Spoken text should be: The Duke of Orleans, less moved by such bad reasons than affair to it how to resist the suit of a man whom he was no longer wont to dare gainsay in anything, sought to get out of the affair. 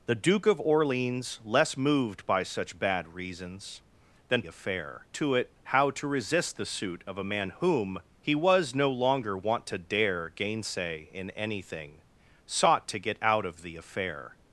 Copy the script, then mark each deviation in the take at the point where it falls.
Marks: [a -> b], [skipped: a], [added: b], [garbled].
The Duke of Orleans, less moved by such bad reasons than affair to it how to resist the suit of a man whom he was no longer wont to dare gainsay in anything, sought to get out of the affair.